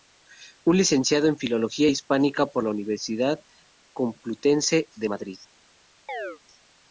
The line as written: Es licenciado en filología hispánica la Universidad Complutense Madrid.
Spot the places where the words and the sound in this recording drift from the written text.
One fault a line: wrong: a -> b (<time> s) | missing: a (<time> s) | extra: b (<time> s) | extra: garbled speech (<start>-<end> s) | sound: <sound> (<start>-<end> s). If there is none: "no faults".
extra: por (2.5 s)
extra: de (5.0 s)
sound: chirp (6.1-6.4 s)